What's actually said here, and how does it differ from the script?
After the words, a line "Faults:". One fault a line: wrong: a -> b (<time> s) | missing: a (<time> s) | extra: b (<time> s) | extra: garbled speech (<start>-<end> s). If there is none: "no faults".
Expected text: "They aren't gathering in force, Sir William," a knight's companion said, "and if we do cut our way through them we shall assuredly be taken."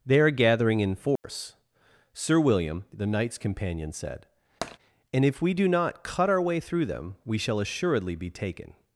"They are gathering in force, Sir William," the knight's companion said, "and if we do not cut our way through them we shall assuredly be taken."
Faults:
wrong: aren't -> are (0.2 s)
wrong: a -> the (2.9 s)
extra: not (5.7 s)